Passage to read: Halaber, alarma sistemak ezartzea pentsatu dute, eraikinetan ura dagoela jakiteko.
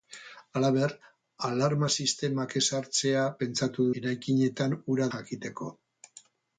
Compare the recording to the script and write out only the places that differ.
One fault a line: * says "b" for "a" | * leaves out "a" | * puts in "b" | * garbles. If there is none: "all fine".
* leaves out "dute"
* leaves out "dagoela"